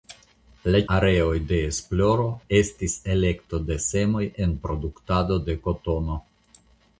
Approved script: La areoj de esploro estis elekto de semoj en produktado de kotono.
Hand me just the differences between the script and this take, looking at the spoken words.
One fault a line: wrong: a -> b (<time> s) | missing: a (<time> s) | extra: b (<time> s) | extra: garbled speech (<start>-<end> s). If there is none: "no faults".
no faults